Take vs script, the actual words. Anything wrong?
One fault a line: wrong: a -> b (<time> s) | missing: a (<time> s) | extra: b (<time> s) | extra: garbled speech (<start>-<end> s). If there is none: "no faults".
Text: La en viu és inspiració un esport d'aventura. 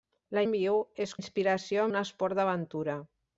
no faults